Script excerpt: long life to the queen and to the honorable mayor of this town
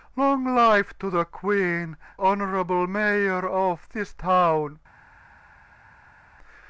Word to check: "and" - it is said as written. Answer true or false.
false